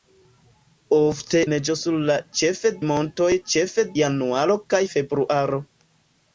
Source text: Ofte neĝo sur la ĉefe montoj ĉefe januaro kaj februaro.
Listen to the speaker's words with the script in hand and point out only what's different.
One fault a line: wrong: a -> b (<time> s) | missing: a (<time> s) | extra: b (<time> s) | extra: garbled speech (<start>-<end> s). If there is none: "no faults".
no faults